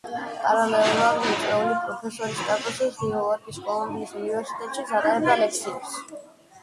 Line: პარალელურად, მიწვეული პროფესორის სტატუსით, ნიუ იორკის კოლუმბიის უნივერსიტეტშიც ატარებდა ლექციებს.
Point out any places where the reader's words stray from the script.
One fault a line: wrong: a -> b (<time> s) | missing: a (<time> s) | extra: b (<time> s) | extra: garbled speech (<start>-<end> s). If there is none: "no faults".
no faults